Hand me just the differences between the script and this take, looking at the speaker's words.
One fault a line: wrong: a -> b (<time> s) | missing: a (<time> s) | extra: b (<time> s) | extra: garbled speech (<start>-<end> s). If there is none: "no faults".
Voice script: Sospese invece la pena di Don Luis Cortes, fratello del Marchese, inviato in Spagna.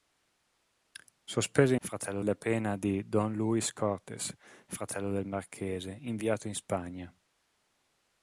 wrong: invece -> fratello (1.8 s)